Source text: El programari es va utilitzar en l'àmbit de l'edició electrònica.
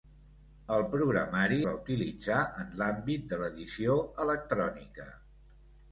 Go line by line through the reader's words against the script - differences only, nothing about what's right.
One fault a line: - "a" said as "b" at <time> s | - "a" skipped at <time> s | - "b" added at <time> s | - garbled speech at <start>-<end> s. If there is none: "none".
- "es" skipped at 1.6 s